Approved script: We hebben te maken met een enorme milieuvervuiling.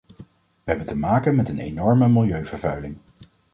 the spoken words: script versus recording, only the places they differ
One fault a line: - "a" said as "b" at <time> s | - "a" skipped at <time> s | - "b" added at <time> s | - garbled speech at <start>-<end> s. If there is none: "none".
none